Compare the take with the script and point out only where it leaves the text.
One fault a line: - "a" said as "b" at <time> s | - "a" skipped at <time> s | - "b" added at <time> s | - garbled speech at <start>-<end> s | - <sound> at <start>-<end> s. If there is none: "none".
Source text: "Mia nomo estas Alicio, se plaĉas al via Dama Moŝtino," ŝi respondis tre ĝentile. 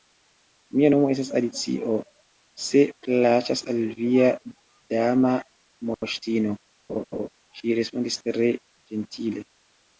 - laugh at 6.9-7.3 s